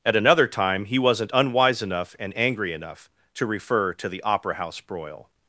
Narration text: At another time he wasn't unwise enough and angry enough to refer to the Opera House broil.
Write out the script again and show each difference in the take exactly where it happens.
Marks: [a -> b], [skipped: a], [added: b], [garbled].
At another time he wasn't unwise enough and angry enough to refer to the Opera House broil.